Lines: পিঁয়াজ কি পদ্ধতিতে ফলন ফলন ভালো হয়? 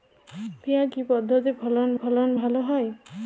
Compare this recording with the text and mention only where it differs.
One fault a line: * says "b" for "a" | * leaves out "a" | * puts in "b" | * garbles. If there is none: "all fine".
all fine